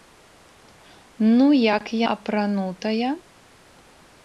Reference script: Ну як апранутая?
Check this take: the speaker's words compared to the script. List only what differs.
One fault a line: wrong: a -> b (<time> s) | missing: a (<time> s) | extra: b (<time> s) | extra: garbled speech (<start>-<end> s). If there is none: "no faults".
no faults